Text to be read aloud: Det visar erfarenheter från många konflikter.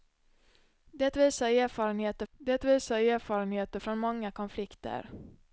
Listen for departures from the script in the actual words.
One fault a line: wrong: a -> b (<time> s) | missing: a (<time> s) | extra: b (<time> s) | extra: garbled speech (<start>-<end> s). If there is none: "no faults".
extra: det visar erfarenheter (2.3 s)